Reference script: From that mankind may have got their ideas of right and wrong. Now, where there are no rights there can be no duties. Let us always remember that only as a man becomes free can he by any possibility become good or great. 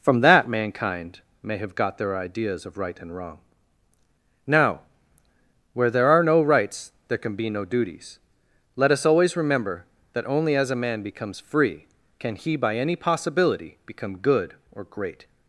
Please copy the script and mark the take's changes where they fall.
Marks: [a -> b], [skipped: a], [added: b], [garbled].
From that mankind may have got their ideas of right and wrong. Now, where there are no rights there can be no duties. Let us always remember that only as a man becomes free can he by any possibility become good or great.